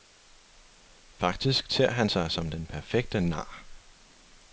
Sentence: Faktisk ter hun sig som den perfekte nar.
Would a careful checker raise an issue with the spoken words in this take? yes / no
yes